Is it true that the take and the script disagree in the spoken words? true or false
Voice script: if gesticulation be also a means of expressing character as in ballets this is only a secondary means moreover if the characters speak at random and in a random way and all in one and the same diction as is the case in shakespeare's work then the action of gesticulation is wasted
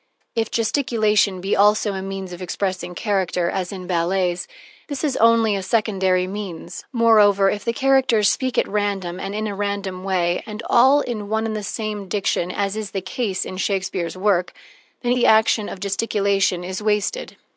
false